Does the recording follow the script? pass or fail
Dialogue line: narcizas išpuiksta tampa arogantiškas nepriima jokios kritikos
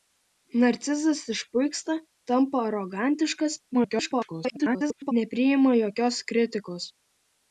fail